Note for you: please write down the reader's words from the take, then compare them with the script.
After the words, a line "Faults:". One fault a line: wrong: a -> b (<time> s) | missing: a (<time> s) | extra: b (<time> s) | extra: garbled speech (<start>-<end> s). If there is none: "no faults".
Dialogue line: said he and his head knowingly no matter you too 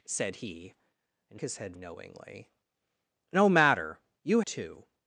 said he and his head knowingly no matter you too
Faults:
no faults